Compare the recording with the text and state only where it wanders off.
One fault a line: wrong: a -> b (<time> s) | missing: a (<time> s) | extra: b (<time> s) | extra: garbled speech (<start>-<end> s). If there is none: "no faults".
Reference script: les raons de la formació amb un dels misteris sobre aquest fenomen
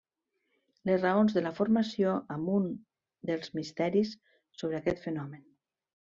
no faults